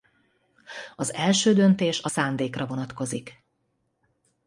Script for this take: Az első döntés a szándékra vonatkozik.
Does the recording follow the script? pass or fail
pass